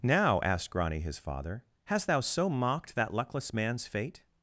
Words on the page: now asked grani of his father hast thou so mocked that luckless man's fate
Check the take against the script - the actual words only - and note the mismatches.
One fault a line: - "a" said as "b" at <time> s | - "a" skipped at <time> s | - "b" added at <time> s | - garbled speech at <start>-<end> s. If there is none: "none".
- "of" skipped at 1.0 s